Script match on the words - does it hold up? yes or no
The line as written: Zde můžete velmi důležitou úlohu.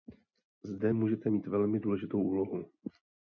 no